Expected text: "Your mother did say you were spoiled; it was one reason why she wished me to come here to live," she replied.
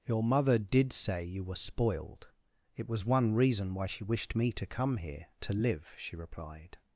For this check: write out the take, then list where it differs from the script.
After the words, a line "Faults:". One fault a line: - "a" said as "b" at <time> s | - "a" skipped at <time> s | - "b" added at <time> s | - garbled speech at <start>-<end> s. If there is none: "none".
"Your mother did say you were spoiled; it was one reason why she wished me to come here to live," she replied.
Faults:
none